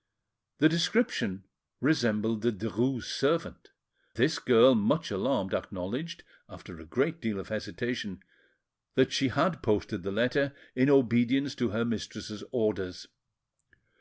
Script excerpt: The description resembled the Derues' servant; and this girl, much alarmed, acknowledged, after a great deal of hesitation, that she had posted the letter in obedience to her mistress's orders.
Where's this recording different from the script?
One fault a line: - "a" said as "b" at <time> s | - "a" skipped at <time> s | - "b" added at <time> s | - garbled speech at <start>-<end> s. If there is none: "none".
- "and" skipped at 3.7 s